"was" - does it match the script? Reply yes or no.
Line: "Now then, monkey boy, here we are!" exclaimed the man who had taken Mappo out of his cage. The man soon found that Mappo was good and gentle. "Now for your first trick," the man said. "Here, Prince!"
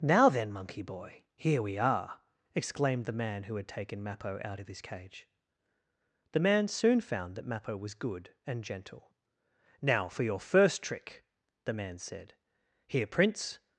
yes